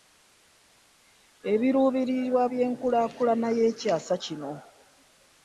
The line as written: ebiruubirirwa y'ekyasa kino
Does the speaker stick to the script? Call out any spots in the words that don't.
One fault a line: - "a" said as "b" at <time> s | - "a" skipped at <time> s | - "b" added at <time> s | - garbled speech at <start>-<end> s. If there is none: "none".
- "by'enkulaakulana" added at 2.5 s